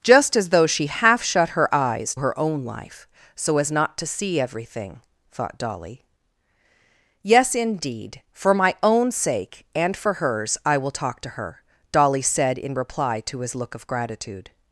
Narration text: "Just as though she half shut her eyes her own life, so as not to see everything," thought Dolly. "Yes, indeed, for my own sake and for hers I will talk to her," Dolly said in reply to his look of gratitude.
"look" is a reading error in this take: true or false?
false